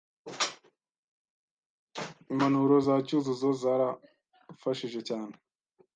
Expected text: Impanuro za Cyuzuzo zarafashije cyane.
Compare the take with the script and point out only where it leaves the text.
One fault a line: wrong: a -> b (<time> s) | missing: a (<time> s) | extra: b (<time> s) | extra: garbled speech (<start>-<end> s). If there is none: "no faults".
no faults